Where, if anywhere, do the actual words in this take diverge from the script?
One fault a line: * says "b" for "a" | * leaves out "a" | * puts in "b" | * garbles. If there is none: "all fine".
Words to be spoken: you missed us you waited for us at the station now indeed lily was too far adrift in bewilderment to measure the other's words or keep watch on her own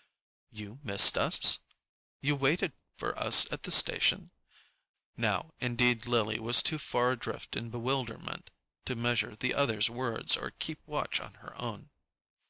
all fine